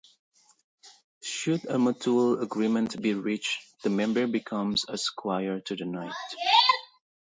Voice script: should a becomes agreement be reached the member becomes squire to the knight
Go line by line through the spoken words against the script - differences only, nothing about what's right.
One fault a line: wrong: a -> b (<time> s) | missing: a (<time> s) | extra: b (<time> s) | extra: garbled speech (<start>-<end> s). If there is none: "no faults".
wrong: becomes -> mutual (1.8 s)
extra: a (4.9 s)